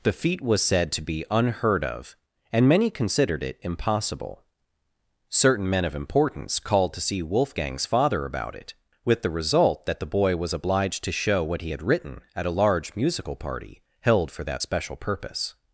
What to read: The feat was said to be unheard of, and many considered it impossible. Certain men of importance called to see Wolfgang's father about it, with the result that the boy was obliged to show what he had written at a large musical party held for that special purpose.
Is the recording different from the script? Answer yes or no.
no